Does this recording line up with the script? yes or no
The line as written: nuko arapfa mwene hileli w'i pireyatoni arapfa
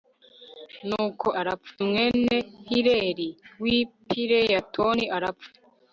yes